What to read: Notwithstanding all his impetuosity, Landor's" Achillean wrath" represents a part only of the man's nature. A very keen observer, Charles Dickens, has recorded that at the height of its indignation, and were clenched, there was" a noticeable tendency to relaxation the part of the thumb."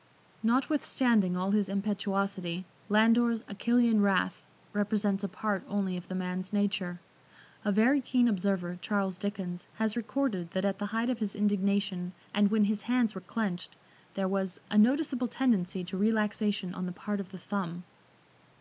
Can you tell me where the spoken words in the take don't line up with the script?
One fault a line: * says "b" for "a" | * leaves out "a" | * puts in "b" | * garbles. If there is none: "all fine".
* says "his" for "its"
* puts in "when his hands"
* puts in "on"